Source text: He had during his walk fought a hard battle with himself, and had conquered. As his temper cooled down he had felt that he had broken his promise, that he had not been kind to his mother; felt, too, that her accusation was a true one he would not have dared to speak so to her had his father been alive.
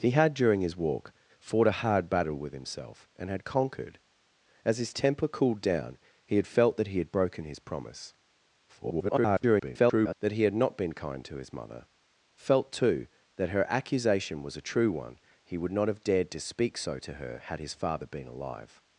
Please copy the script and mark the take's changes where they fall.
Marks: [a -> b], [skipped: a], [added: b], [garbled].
He had during his walk fought a hard battle with himself, and had conquered. As his temper cooled down he had felt that he had broken his promise, [garbled] that he had not been kind to his mother; felt, too, that her accusation was a true one he would not have dared to speak so to her had his father been alive.